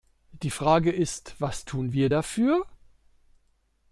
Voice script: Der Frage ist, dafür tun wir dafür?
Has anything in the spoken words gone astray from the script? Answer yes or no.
yes